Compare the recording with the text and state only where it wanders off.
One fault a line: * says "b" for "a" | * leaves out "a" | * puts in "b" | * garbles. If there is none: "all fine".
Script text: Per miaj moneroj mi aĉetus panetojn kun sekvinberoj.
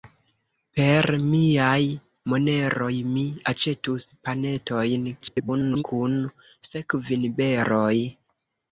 * garbles